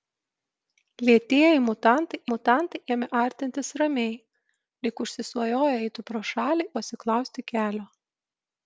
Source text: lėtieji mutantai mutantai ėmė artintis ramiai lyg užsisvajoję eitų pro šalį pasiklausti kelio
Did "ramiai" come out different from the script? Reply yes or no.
no